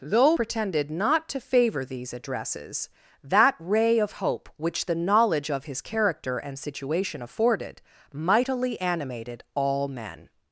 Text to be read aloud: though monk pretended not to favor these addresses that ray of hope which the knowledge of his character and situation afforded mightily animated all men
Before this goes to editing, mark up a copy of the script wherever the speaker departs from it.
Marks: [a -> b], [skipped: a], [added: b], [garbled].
though [skipped: monk] pretended not to favor these addresses that ray of hope which the knowledge of his character and situation afforded mightily animated all men